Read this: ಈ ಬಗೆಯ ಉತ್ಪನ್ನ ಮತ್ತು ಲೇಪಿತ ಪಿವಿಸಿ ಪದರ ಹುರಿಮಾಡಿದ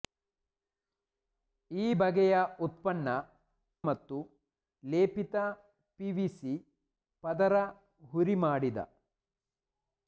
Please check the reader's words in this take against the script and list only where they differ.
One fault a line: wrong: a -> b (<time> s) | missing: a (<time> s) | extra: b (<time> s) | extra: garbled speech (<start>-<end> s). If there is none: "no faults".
no faults